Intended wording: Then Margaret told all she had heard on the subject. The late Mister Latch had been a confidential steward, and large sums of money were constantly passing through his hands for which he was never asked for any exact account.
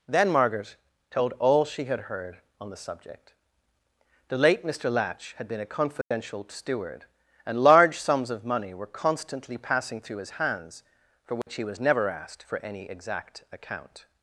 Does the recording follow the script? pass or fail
pass